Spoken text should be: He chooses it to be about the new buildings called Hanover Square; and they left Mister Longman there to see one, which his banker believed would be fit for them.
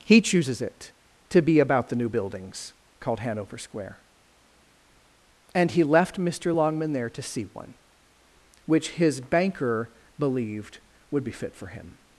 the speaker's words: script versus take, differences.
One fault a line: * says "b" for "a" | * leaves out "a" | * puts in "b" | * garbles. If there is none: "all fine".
* says "he" for "they"
* says "him" for "them"